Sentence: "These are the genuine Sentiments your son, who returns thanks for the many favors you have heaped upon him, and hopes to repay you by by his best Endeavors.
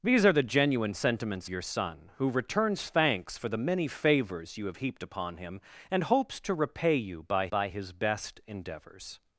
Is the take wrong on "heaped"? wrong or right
right